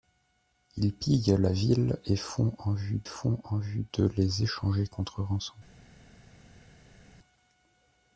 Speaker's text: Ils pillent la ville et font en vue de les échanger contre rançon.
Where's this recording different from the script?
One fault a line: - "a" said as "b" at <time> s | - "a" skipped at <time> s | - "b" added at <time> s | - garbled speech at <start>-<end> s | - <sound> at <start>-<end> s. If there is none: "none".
- "font en vue" added at 3.0 s